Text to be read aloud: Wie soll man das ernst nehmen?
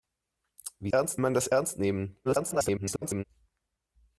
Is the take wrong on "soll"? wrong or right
wrong